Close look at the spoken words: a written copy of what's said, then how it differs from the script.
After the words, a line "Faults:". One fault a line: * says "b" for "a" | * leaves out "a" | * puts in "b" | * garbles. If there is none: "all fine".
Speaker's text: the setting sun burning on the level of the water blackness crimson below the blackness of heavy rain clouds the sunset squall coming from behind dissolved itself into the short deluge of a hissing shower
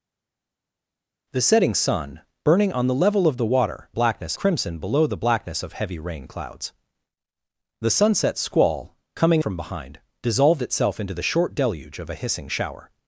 the setting sun burning on the level of the water blackness crimson below the blackness of heavy rain clouds the sunset squall coming from behind dissolved itself into the short deluge of a hissing shower
Faults:
all fine